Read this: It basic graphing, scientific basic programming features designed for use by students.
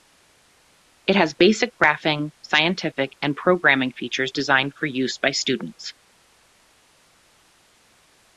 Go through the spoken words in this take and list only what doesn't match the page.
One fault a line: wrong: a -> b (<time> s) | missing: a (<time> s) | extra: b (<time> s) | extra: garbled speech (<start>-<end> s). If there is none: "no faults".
extra: has (1.1 s)
wrong: basic -> and (3.2 s)